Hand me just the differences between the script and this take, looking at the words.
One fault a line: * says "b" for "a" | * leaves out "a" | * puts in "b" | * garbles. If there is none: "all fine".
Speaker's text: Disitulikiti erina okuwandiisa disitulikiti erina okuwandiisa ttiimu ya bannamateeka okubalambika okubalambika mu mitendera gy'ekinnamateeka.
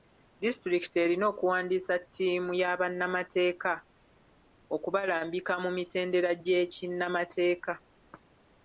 * leaves out "disitulikiti erina okuwandiisa"
* leaves out "okubalambika"